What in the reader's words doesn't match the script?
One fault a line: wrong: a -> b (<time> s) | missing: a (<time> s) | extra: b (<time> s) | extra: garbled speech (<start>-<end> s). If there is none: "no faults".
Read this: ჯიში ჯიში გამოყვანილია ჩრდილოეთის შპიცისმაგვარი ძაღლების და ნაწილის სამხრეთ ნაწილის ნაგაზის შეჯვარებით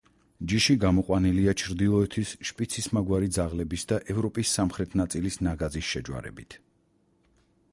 missing: ჯიში (0.8 s)
wrong: ნაწილის -> ევროპის (4.2 s)